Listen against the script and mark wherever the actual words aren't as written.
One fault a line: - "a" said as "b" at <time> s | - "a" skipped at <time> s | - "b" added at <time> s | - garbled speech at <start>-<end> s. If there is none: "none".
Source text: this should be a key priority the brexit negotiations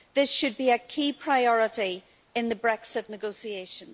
- "in" added at 2.4 s